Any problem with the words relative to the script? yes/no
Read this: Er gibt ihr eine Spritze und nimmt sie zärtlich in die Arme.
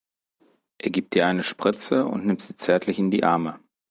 no